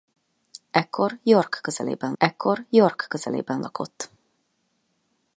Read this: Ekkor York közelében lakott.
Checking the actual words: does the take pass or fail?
fail